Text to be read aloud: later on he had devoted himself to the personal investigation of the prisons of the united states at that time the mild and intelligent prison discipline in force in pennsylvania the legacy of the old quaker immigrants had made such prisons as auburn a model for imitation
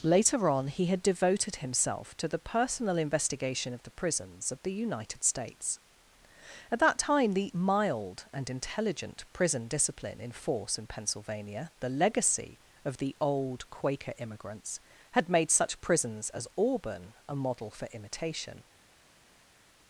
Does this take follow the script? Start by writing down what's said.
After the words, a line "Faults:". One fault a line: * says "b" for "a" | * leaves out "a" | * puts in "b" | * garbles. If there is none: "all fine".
later on he had devoted himself to the personal investigation of the prisons of the united states at that time the mild and intelligent prison discipline in force in pennsylvania the legacy of the old quaker immigrants had made such prisons as auburn a model for imitation
Faults:
all fine